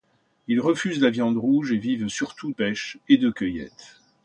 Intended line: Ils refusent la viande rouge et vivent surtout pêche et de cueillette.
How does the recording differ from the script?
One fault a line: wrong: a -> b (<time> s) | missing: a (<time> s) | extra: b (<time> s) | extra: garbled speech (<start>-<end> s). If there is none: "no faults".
no faults